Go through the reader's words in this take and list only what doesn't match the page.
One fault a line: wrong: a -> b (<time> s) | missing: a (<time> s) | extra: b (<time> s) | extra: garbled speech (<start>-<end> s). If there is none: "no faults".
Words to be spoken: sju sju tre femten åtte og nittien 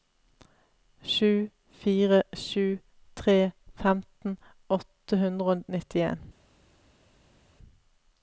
extra: fire (1.8 s)
extra: hundre (5.2 s)